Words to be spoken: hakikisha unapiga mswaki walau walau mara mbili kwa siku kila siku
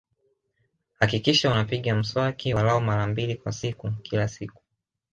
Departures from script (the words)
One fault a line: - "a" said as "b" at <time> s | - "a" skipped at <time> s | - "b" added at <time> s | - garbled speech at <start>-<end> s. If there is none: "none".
- "walau" skipped at 2.8 s